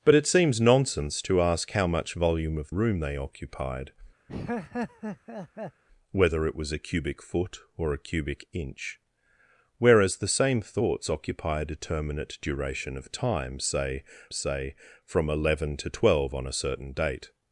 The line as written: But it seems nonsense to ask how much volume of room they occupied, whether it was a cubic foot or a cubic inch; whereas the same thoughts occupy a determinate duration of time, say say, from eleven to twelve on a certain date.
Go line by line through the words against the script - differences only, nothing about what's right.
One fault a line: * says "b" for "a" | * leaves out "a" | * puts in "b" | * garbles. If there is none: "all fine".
all fine